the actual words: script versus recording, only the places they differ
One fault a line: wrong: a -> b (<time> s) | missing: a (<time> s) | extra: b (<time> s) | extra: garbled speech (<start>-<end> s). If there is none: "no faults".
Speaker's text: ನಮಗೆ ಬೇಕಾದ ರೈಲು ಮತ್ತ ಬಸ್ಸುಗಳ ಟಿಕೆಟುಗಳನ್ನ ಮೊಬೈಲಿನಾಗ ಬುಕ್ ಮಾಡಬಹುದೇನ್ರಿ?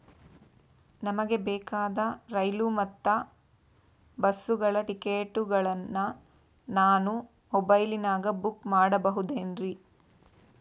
extra: ನಾನು (6.7 s)